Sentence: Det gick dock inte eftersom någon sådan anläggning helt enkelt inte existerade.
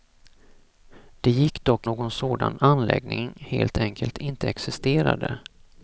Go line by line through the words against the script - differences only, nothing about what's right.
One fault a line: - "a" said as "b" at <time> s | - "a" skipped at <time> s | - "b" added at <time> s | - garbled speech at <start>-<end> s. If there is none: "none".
- "inte eftersom" skipped at 1.9 s